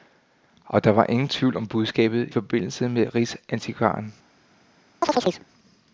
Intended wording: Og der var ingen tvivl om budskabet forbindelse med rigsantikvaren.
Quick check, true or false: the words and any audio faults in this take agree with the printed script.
false